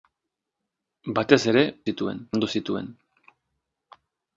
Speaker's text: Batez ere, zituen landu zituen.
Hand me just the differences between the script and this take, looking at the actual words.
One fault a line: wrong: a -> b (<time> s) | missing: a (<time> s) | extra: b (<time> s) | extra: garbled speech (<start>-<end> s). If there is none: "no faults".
no faults